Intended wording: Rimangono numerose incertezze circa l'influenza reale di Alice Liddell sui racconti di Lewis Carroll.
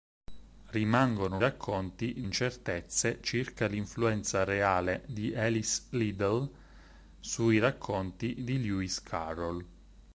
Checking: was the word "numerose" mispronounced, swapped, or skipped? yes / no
yes